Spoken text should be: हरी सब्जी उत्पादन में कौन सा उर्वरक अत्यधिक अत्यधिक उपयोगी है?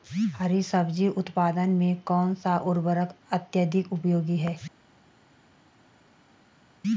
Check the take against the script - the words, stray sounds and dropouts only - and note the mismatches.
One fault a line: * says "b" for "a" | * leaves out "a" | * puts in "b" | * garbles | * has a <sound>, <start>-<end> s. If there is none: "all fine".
* leaves out "अत्यधिक"